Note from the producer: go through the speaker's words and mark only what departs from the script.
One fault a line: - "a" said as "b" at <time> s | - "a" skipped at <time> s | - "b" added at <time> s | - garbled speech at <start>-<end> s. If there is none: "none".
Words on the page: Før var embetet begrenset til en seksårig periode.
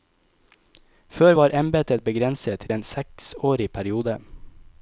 - "til" skipped at 2.6 s